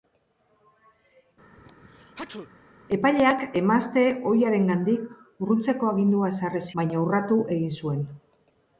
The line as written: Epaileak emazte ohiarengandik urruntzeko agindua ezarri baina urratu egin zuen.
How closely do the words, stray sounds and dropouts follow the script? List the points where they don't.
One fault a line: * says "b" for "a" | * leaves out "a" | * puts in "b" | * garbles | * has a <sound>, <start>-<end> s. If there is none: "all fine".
* has a sneeze, 1.6-2.5 s